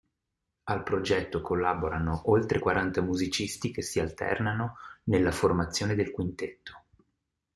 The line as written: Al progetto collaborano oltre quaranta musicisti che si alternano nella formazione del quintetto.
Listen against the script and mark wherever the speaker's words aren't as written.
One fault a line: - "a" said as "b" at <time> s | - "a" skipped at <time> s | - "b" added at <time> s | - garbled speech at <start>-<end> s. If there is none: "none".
none